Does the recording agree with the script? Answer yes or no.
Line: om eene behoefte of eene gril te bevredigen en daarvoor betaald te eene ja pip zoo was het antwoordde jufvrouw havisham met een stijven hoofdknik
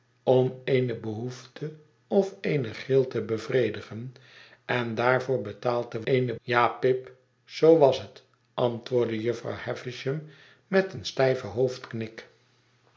yes